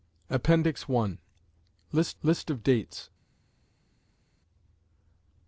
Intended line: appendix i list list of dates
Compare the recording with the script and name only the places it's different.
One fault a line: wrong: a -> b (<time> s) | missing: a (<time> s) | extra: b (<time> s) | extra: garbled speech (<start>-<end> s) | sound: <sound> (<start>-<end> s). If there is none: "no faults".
no faults